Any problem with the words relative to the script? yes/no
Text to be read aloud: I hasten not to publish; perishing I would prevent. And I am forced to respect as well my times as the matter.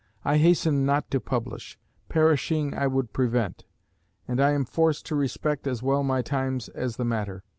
no